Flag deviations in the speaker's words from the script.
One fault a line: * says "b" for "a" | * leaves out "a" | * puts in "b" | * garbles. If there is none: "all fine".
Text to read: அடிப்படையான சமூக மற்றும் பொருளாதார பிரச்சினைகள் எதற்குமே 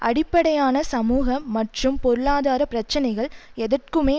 all fine